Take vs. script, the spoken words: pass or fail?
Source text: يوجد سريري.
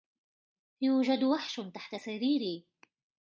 fail